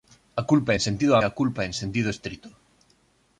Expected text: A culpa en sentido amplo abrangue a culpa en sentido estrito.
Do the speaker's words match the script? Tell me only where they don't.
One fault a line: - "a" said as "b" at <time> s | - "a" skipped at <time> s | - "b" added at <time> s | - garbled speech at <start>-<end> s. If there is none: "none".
- "amplo abrangue" skipped at 1.1 s